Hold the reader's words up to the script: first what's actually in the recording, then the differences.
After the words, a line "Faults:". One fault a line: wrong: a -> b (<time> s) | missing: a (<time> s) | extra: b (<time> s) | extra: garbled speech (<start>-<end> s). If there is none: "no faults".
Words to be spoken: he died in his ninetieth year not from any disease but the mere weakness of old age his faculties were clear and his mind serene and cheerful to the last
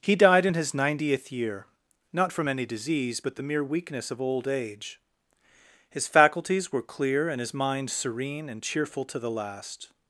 he died in his ninetieth year not from any disease but the mere weakness of old age his faculties were clear and his mind serene and cheerful to the last
Faults:
no faults